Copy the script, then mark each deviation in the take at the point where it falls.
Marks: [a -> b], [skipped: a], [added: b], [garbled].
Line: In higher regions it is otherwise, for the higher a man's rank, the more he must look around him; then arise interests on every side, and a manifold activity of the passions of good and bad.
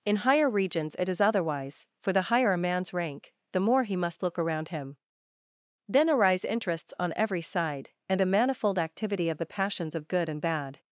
In higher regions it is otherwise, for the higher a man's rank, the more he must look around him; then arise interests on every side, and a manifold activity of the passions of good and bad.